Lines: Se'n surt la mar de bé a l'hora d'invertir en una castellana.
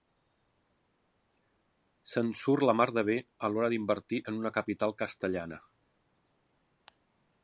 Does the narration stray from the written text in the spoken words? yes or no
yes